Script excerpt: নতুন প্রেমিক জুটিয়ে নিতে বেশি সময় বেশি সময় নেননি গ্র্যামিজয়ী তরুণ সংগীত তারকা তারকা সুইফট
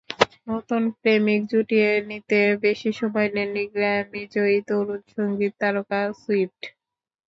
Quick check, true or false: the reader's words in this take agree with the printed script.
false